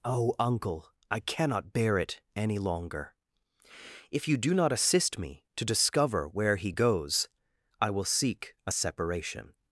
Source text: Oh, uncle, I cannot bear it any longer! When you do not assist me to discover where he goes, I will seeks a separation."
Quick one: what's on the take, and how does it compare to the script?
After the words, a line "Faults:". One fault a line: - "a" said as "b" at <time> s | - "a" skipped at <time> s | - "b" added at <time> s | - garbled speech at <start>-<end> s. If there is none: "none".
Oh, uncle, I cannot bear it any longer! If you do not assist me to discover where he goes, I will seek a separation."
Faults:
- "When" said as "If" at 4.1 s
- "seeks" said as "seek" at 8.1 s